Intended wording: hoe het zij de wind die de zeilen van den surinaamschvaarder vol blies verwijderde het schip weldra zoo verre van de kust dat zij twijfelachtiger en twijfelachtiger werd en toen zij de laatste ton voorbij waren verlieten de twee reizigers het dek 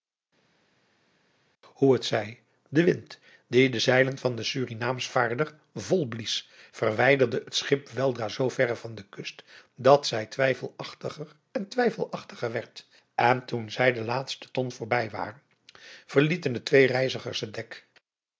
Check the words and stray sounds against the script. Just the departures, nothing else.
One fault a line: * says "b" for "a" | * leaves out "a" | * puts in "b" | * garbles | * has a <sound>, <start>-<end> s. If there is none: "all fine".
all fine